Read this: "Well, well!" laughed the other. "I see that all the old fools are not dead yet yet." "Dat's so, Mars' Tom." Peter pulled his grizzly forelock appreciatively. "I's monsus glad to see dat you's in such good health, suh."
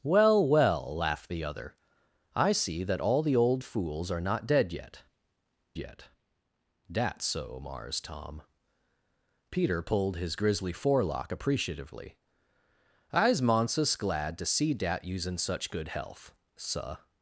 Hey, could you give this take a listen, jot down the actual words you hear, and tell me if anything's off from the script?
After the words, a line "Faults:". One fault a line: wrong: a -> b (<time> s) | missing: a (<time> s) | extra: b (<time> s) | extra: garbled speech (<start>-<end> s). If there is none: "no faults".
"Well, well!" laughed the other. "I see that all the old fools are not dead yet yet." "Dat's so, Mars' Tom." Peter pulled his grizzly forelock appreciatively. "I's monsus glad to see dat you's in such good health, suh."
Faults:
no faults